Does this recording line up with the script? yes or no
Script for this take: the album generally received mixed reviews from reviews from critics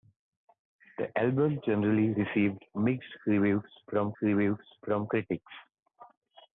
yes